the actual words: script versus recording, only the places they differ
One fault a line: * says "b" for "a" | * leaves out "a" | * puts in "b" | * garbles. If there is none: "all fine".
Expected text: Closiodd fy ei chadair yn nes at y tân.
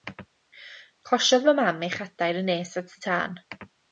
* puts in "mam"